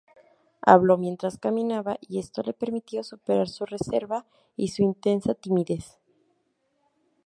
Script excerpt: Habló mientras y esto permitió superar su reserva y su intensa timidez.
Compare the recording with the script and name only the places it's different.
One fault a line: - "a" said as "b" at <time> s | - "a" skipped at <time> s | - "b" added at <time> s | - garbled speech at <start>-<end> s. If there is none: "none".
- "caminaba" added at 1.4 s
- "le" added at 2.4 s